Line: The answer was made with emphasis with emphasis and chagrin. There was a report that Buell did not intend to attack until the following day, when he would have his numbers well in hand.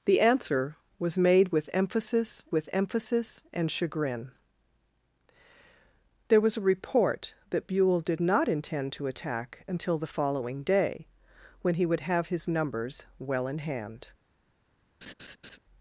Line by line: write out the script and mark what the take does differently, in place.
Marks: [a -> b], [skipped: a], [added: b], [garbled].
The answer was made with emphasis with emphasis and chagrin. There was a report that Buell did not intend to attack until the following day, when he would have his numbers well in hand.